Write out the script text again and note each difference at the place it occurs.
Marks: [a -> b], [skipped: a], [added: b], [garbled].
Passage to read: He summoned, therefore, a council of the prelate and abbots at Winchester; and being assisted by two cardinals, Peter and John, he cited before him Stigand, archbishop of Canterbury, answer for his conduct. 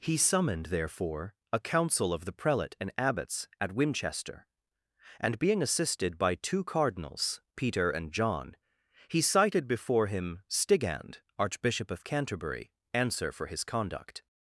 He summoned, therefore, a council of the prelate and abbots at Winchester; and being assisted by two cardinals, Peter and John, he cited before him Stigand, archbishop of Canterbury, answer for his conduct.